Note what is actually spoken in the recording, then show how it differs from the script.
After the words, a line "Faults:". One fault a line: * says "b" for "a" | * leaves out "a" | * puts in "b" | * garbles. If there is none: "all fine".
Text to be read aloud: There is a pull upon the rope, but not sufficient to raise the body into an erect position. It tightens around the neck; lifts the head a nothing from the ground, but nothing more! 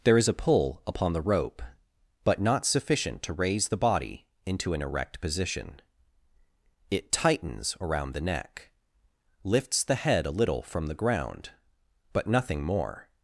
There is a pull upon the rope, but not sufficient to raise the body into an erect position. It tightens around the neck; lifts the head a little from the ground, but nothing more!
Faults:
* says "little" for "nothing"